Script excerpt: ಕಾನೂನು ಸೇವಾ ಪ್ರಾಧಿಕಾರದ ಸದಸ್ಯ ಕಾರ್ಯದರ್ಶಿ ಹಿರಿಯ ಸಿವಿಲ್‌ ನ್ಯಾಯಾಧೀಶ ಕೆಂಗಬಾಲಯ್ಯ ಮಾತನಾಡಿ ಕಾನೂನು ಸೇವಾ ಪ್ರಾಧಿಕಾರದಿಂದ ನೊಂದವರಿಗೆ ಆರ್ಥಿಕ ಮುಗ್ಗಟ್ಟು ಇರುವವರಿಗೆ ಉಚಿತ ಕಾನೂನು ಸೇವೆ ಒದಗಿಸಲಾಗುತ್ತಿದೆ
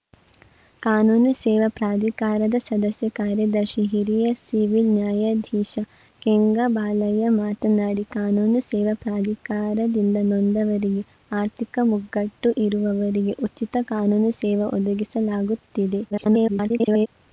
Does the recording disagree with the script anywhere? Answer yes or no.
yes